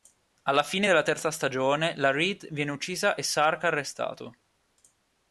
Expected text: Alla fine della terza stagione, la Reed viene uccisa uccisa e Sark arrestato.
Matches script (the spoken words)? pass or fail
fail